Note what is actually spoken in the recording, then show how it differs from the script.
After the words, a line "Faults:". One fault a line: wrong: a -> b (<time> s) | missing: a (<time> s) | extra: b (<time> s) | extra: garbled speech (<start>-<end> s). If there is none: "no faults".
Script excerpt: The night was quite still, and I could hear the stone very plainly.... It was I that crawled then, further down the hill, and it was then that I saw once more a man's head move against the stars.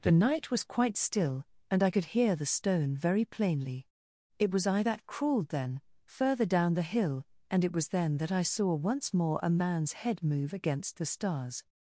The night was quite still, and I could hear the stone very plainly.... It was I that crawled then, further down the hill, and it was then that I saw once more a man's head move against the stars.
Faults:
no faults